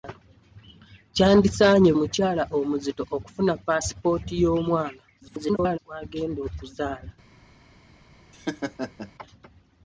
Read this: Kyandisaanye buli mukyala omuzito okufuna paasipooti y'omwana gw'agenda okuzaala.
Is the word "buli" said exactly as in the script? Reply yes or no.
no